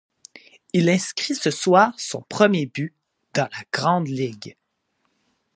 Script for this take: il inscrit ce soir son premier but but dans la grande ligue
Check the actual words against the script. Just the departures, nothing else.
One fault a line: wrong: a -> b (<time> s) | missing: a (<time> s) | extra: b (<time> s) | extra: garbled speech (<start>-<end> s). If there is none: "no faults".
missing: but (2.9 s)